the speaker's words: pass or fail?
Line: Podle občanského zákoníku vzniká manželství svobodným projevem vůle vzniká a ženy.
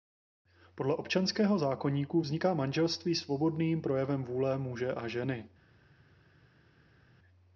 fail